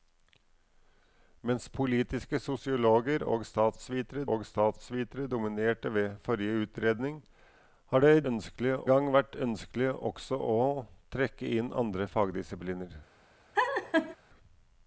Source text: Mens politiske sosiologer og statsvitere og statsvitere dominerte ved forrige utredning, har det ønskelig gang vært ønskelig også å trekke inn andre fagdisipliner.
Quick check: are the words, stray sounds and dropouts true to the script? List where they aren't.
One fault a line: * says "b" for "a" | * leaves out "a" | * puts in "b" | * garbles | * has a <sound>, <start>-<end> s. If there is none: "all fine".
* has a laugh, 13.5-14.2 s